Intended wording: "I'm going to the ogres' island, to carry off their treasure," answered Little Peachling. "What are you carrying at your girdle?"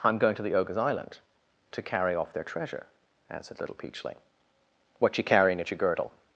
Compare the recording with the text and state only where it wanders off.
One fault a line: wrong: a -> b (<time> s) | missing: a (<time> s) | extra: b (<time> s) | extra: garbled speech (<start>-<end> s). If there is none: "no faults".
missing: are (5.2 s)